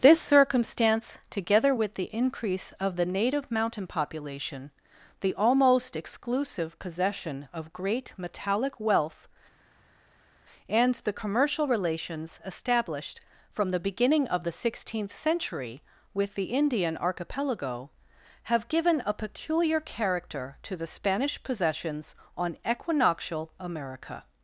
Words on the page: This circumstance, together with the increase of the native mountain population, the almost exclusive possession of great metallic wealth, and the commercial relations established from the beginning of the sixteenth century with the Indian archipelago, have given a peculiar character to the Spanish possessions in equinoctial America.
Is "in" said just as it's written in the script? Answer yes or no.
no